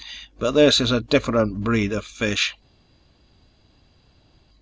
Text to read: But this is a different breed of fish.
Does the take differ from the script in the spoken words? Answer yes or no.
no